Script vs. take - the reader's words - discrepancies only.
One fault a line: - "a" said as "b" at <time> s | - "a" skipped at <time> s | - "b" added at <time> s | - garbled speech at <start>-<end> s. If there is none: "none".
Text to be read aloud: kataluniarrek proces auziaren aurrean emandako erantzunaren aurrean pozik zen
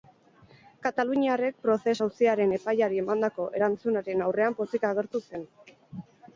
- "aurrean" said as "epaiari" at 2.6 s
- "agertu" added at 4.9 s